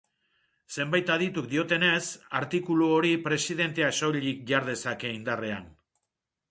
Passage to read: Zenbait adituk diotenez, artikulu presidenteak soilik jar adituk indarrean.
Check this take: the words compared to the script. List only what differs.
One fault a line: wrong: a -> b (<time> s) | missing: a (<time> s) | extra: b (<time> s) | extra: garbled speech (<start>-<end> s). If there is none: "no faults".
extra: hori (3.0 s)
wrong: adituk -> dezake (4.7 s)